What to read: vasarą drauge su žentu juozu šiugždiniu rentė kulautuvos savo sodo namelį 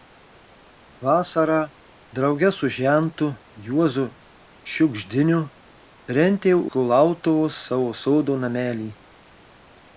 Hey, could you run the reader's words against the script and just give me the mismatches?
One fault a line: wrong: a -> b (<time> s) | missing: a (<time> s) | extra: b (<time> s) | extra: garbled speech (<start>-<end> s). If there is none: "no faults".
no faults